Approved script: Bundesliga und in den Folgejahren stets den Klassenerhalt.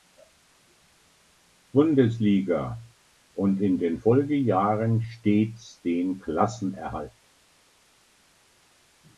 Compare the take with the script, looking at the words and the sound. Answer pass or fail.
pass